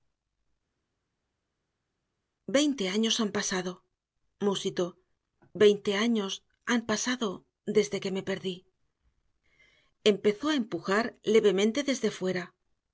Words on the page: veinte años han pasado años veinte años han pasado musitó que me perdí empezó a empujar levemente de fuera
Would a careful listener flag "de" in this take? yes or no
yes